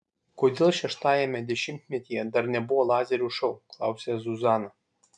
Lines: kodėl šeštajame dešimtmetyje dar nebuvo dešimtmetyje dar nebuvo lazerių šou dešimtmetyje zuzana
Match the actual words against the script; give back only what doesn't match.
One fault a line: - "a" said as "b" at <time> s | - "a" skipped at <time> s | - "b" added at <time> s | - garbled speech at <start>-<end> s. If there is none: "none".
- "dešimtmetyje dar nebuvo" skipped at 2.9 s
- "dešimtmetyje" said as "klausia" at 3.8 s